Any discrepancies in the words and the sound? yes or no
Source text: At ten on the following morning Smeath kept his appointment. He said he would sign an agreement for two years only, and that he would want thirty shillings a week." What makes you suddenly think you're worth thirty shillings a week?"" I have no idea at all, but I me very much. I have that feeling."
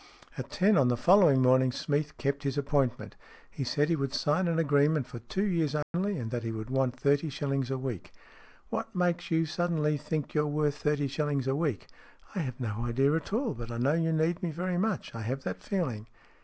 yes